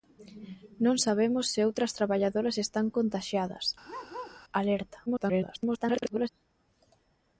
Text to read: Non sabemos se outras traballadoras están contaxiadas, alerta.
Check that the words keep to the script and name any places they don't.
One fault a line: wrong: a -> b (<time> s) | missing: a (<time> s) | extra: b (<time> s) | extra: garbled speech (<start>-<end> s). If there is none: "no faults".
extra: garbled speech (5.1-6.3 s)